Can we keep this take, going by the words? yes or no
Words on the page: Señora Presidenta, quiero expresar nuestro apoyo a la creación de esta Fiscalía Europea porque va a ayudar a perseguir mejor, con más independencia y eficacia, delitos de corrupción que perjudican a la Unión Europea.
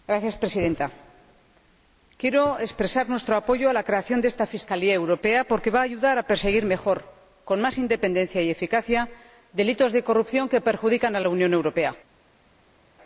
yes